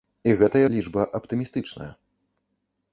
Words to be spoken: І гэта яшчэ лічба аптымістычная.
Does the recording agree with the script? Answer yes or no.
no